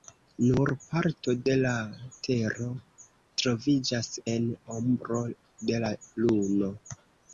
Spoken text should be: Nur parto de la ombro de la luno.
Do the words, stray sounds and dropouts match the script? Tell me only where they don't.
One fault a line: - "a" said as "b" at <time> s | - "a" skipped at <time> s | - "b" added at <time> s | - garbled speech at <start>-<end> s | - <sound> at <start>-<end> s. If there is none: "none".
- "tero troviĝas en" added at 2.3 s